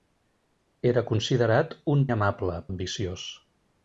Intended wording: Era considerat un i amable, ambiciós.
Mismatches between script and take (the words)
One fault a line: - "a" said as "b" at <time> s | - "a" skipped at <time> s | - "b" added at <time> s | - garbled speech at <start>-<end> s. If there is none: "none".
none